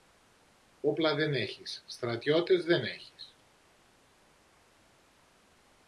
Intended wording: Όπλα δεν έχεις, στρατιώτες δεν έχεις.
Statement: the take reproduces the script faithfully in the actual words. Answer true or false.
true